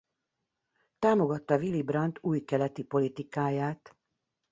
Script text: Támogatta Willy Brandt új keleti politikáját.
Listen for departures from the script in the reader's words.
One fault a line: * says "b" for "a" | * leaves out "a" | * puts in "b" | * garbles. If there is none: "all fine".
all fine